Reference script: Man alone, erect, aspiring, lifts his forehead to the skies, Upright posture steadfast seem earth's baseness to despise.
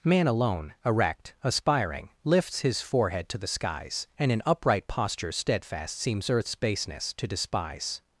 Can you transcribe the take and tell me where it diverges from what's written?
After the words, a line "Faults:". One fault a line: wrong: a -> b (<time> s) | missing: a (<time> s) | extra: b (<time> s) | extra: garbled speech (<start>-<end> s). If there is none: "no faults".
Man alone, erect, aspiring, lifts his forehead to the skies, And in upright posture steadfast seems earth's baseness to despise.
Faults:
extra: And in (4.2 s)
wrong: seem -> seems (6.0 s)